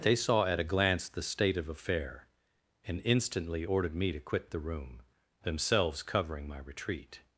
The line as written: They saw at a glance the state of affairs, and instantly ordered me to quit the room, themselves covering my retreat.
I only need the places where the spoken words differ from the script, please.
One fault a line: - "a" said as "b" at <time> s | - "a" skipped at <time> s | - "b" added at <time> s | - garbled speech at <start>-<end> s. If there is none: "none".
- "affairs" said as "affair" at 1.7 s